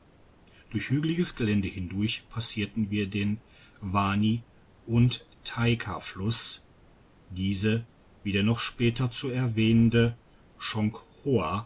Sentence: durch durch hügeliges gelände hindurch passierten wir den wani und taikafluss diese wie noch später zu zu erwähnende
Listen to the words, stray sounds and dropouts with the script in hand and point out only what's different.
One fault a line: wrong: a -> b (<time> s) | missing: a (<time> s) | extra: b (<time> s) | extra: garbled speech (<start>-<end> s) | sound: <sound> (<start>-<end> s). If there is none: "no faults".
missing: durch (0.9 s)
extra: der (8.3 s)
missing: zu (9.3 s)